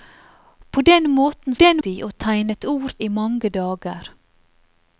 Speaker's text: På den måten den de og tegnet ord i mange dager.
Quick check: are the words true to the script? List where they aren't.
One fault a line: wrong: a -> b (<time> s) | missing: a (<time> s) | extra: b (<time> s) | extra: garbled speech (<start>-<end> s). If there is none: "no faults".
no faults